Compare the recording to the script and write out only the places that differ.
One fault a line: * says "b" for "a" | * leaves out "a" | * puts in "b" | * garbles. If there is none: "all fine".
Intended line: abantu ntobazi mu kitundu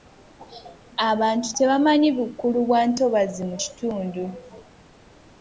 * puts in "tebamanyi bukulu bwa"